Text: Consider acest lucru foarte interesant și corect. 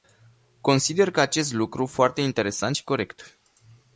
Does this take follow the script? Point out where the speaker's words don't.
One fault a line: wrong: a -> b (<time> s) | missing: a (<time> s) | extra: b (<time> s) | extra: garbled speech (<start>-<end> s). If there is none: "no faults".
no faults